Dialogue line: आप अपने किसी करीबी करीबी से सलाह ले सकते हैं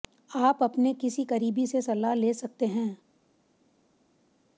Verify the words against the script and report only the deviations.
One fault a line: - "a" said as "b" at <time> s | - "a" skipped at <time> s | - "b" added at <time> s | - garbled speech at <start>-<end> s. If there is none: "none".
- "करीबी" skipped at 1.7 s